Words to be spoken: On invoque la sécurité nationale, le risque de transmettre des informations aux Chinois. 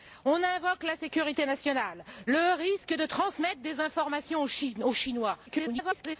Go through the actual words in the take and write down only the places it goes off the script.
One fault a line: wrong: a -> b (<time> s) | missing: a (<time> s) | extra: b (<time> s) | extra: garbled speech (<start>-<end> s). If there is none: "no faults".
extra: garbled speech (5.5-6.2 s)